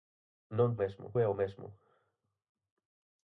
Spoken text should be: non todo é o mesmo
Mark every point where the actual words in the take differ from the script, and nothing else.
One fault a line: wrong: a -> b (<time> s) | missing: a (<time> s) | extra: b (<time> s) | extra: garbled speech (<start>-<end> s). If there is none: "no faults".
wrong: todo -> mesmo (0.8 s)